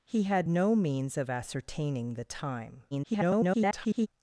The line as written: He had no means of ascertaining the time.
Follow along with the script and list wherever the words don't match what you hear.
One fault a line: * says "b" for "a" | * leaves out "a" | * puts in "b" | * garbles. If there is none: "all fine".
* garbles